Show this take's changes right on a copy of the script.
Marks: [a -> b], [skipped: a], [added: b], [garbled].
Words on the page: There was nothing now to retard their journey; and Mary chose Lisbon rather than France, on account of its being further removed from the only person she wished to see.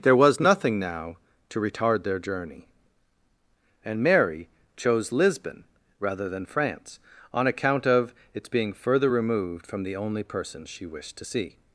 There was nothing now to retard their journey; and Mary chose Lisbon rather than France, on account of its being further removed from the only person she wished to see.